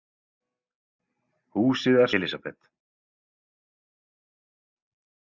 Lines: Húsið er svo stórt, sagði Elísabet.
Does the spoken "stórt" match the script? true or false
false